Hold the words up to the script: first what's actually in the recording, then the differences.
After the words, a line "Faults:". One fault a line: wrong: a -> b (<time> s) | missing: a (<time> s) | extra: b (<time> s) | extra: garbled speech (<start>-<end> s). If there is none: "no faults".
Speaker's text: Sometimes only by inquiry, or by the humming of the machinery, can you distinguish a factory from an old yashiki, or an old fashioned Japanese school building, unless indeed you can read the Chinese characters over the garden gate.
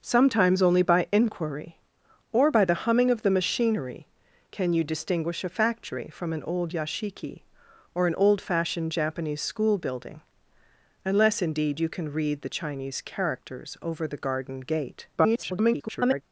Sometimes only by inquiry, or by the humming of the machinery, can you distinguish a factory from an old yashiki, or an old fashioned Japanese school building, unless indeed you can read the Chinese characters over the garden gate. [garbled]
Faults:
extra: garbled speech (15.2-16.2 s)